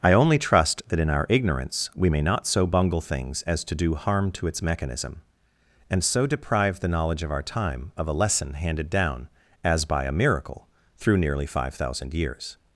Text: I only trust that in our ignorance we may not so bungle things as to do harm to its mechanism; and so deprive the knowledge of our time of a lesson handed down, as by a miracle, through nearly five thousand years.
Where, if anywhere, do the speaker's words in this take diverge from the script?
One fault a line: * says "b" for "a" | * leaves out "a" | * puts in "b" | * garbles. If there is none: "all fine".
all fine